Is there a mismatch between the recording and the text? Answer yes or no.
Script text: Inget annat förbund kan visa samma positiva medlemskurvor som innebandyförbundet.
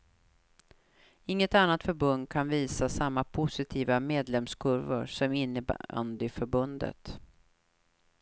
no